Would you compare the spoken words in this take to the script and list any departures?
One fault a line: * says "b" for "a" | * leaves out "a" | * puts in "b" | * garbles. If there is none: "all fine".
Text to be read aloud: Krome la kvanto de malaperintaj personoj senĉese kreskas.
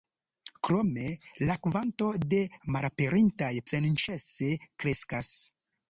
* leaves out "personoj"